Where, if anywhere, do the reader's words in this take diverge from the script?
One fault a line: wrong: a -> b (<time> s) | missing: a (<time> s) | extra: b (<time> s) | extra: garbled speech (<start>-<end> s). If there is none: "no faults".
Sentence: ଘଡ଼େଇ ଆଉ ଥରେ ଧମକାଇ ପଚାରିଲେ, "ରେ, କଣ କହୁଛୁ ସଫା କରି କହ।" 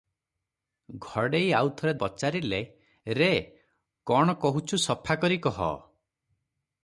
missing: ଧମକାଇ (1.9 s)